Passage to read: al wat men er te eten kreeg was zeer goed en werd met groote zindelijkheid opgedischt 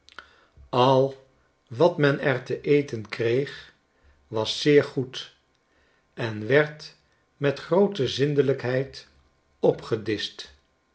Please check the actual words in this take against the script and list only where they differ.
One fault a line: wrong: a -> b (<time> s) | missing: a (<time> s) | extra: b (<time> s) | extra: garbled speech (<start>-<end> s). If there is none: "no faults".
no faults